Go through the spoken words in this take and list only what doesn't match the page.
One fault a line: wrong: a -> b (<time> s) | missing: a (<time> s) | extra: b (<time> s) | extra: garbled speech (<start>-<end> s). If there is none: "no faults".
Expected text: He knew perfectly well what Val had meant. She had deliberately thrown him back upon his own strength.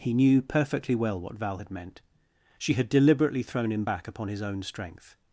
no faults